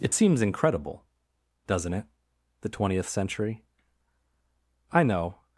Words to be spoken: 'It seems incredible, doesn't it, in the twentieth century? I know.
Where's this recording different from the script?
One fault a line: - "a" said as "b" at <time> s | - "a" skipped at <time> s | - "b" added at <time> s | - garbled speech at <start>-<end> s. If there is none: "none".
- "in" skipped at 2.0 s